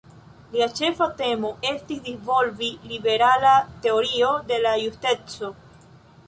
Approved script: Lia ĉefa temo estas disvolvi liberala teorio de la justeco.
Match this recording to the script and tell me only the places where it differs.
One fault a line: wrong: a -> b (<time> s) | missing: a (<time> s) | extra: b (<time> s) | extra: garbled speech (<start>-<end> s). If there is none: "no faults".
wrong: estas -> estis (1.7 s)